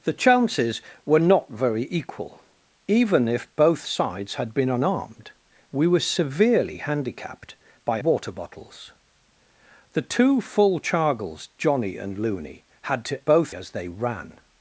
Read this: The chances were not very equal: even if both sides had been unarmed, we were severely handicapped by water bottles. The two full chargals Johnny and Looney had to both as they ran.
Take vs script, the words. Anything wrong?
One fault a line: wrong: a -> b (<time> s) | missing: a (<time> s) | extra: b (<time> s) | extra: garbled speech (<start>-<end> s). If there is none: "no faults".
no faults